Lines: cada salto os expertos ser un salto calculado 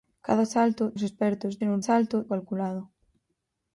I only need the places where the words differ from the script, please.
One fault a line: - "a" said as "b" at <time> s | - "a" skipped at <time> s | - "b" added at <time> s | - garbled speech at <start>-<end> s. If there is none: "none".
none